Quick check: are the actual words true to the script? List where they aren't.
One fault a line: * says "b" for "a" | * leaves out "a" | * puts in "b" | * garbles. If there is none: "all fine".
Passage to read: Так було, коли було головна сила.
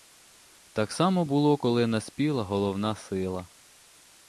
* puts in "само"
* says "наспіла" for "було"